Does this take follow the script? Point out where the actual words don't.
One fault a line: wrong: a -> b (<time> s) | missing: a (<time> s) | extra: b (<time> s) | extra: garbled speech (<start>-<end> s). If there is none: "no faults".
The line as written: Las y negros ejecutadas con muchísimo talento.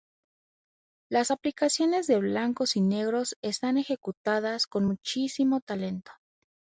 extra: aplicaciones de blancos (1.3 s)
extra: están (3.4 s)